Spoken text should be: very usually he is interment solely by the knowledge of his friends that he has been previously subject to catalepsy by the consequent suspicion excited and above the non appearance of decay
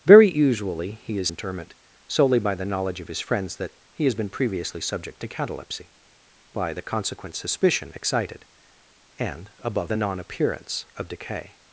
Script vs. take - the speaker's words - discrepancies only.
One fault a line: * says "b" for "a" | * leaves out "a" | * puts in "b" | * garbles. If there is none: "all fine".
all fine